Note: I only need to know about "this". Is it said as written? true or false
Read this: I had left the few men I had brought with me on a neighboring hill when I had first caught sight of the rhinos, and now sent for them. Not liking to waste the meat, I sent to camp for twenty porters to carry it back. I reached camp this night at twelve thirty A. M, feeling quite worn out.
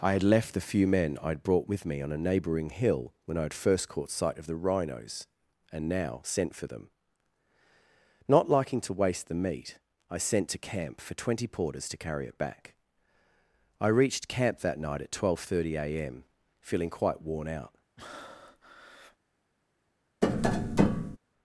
false